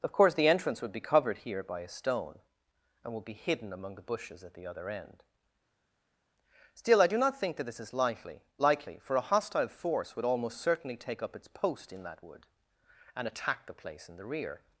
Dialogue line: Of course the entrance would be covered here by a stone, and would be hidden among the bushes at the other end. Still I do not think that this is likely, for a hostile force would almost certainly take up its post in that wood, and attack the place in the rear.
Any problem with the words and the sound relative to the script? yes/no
yes